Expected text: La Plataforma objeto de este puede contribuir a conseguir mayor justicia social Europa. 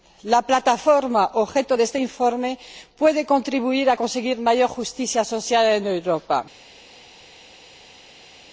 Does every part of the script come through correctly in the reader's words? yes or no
no